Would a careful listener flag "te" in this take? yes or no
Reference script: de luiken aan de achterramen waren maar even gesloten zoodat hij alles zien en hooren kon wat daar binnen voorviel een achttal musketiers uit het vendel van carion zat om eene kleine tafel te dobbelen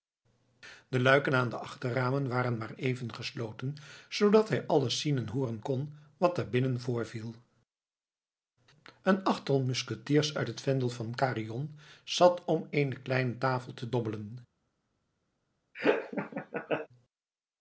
no